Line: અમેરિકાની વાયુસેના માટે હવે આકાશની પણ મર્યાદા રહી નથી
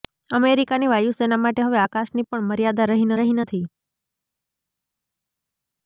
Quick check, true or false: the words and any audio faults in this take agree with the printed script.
false